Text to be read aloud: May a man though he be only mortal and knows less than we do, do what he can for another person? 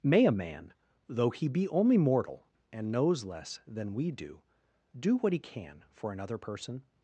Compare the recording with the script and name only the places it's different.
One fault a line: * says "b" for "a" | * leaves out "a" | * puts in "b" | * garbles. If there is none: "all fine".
all fine